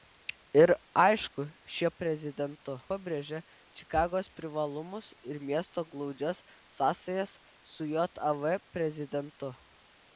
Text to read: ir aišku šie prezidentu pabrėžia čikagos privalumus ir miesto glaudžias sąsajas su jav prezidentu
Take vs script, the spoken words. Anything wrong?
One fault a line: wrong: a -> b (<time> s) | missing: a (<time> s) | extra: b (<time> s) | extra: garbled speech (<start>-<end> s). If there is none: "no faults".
no faults